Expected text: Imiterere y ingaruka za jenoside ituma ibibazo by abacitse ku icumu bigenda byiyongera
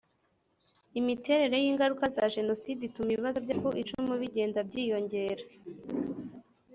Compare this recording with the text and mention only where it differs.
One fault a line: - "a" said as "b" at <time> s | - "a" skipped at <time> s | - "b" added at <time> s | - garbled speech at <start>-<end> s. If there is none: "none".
- "abacitse" skipped at 3.5 s